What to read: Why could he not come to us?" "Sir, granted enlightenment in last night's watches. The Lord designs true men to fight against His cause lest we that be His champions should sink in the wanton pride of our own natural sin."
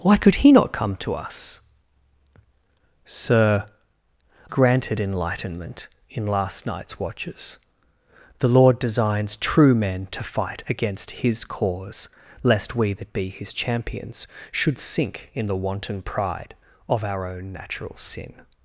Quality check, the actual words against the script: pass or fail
pass